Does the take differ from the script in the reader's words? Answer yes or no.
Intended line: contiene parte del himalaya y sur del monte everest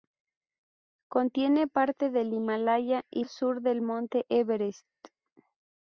no